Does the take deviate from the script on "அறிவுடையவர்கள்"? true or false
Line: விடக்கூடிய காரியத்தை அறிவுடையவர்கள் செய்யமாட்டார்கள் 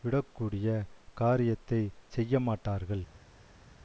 true